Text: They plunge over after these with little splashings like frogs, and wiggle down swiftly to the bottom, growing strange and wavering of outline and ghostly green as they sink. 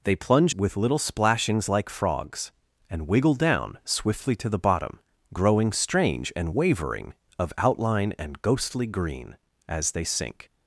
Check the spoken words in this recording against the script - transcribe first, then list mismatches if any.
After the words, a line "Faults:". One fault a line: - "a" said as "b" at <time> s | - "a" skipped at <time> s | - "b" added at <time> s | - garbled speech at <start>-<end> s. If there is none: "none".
They plunge with little splashings like frogs, and wiggle down swiftly to the bottom, growing strange and wavering of outline and ghostly green as they sink.
Faults:
- "over after these" skipped at 0.6 s